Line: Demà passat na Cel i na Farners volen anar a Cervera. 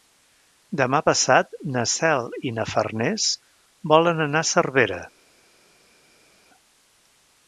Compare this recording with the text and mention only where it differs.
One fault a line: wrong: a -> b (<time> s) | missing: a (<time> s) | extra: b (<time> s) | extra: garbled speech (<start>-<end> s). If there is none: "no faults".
no faults